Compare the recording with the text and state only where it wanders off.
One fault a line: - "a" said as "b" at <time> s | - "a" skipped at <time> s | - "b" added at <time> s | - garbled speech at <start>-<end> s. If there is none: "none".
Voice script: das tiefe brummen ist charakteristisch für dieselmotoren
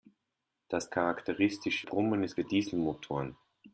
- "tiefe" said as "charakteristisch" at 0.9 s
- "charakteristisch" skipped at 2.4 s